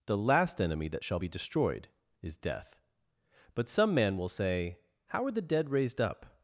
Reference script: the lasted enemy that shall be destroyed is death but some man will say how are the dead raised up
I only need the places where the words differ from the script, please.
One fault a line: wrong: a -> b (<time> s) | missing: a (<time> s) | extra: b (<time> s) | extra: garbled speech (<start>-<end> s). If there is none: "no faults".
wrong: lasted -> last (0.2 s)